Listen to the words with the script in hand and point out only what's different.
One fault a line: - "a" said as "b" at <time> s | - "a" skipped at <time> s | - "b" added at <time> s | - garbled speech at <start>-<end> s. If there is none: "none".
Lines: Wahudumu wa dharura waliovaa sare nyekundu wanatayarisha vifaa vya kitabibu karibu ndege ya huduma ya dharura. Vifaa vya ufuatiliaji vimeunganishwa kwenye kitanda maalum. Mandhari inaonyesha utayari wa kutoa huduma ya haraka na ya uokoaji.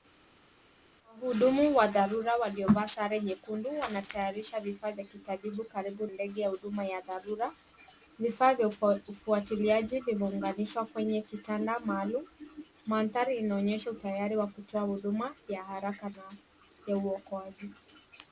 none